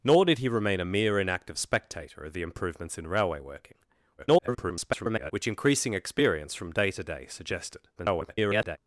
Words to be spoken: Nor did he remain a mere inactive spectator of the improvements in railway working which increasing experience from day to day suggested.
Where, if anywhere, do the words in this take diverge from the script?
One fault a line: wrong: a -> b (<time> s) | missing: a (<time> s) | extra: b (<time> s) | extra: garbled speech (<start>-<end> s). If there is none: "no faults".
extra: garbled speech (4.2-5.3 s)
extra: garbled speech (8.0-8.8 s)